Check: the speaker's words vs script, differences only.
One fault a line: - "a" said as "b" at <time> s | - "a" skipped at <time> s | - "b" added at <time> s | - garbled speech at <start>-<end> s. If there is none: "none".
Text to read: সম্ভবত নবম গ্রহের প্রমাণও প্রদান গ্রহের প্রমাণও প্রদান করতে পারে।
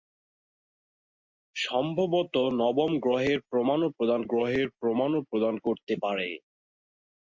none